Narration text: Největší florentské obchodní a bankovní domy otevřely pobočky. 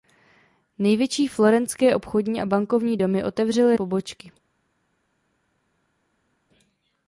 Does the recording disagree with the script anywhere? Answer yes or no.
no